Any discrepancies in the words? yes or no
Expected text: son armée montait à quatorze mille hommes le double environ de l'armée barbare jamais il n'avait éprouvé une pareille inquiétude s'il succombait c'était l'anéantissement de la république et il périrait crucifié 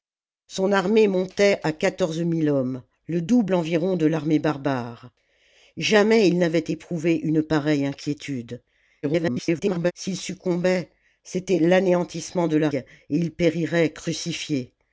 yes